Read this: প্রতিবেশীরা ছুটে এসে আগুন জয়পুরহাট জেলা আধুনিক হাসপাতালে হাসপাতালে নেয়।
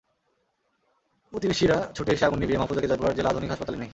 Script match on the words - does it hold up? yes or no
no